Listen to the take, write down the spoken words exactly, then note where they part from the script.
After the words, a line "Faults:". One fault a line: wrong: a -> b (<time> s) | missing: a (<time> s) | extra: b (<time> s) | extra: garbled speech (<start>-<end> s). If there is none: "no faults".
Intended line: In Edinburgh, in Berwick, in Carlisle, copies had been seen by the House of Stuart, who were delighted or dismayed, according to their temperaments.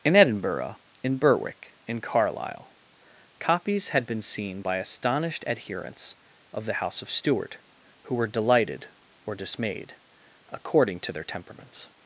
In Edinburgh, in Berwick, in Carlisle, copies had been seen by astonished adherents of the House of Stuart, who were delighted or dismayed, according to their temperaments.
Faults:
extra: astonished adherents of (4.8 s)